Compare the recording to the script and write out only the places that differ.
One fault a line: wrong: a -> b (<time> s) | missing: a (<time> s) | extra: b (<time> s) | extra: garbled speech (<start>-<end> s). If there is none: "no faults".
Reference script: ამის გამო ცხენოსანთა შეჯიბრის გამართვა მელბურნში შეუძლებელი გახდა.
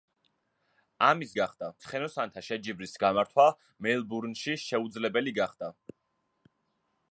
wrong: გამო -> გახდა (1.4 s)